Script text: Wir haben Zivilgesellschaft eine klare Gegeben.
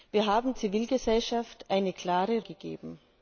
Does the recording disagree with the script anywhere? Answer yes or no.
no